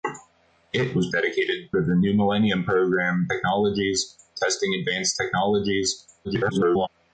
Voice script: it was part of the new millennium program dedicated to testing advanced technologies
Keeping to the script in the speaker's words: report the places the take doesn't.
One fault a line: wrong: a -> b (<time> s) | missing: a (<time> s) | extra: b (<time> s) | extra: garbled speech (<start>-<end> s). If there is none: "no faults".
wrong: part -> dedicated (1.1 s)
wrong: dedicated -> technologies (3.3 s)
extra: garbled speech (6.2-6.9 s)